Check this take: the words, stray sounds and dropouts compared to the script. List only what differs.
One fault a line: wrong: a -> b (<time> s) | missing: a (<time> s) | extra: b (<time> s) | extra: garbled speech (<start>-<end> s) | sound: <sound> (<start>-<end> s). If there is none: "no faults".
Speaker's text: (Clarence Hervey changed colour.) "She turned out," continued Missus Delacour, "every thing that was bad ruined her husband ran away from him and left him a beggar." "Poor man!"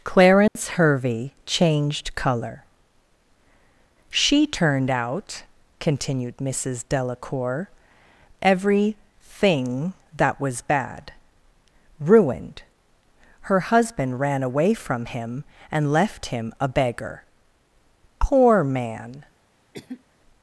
sound: dropout (0.5-0.6 s)
sound: cough (19.7-20.0 s)